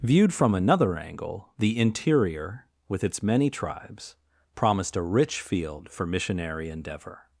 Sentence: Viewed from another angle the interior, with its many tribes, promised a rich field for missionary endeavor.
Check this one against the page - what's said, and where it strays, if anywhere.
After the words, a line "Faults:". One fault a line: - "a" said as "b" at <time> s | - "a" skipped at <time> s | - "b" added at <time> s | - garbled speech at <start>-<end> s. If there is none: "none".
Viewed from another angle the interior, with its many tribes, promised a rich field for missionary endeavor.
Faults:
none